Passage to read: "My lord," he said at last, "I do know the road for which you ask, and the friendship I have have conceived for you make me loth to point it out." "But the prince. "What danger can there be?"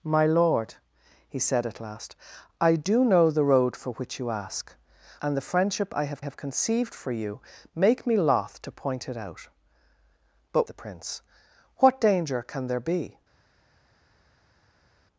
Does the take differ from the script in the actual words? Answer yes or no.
no